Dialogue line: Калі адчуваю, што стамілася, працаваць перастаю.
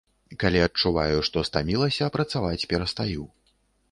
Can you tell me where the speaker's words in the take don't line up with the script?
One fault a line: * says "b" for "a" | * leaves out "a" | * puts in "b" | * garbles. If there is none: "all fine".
all fine